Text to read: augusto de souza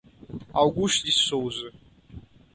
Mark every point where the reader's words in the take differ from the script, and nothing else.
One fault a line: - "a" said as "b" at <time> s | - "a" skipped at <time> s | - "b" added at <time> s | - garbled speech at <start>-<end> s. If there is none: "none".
none